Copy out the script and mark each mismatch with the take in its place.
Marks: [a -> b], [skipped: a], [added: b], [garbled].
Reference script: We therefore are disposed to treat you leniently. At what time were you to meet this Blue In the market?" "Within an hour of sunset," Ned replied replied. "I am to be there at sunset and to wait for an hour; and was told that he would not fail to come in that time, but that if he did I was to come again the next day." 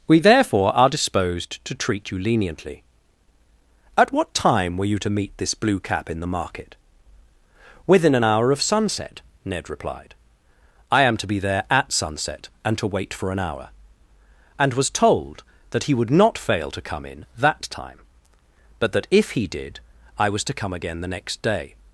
We therefore are disposed to treat you leniently. At what time were you to meet this Blue [added: Cap] In the market?" "Within an hour of sunset," Ned replied [skipped: replied.] "I am to be there at sunset and to wait for an hour; and was told that he would not fail to come in that time, but that if he did I was to come again the next day."